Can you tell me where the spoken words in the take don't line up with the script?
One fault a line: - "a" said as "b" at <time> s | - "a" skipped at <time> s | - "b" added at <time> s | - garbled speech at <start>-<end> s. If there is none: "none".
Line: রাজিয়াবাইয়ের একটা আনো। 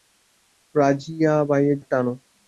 none